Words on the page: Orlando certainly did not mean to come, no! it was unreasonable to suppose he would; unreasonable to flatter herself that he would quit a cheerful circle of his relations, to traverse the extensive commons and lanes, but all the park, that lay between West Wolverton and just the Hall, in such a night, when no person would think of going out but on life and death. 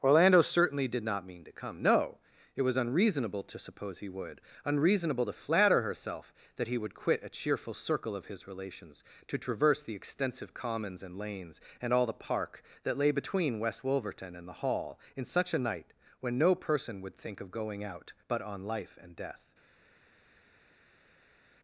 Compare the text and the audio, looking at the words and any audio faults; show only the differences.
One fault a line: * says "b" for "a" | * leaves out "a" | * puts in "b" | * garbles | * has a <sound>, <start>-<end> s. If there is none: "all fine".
* says "and" for "but"
* leaves out "just"